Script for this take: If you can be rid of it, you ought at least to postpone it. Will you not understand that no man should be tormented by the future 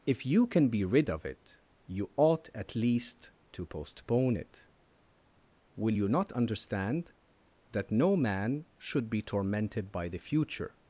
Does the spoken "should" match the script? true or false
true